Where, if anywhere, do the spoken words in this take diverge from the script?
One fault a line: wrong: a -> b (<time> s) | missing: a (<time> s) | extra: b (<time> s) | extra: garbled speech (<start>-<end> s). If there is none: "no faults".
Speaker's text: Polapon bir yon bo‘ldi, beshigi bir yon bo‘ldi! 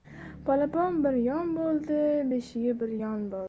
no faults